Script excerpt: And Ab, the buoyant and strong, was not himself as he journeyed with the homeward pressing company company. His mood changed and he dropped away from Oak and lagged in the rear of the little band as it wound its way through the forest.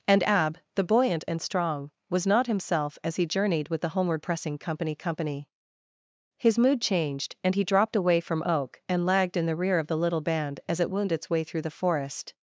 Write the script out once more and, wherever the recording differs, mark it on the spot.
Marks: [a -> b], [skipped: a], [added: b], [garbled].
And Ab, the buoyant and strong, was not himself as he journeyed with the homeward pressing company company. His mood changed and he dropped away from Oak and lagged in the rear of the little band as it wound its way through the forest.